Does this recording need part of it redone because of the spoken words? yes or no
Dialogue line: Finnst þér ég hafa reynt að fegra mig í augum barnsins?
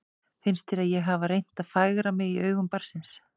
no